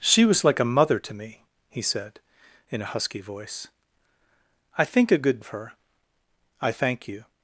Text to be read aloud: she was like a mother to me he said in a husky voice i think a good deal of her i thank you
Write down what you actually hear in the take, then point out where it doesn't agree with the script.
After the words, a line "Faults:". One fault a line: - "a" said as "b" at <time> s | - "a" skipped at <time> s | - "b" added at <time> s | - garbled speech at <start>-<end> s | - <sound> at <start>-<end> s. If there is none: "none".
she was like a mother to me he said in a husky voice i think a good of her i thank you
Faults:
- "deal" skipped at 5.4 s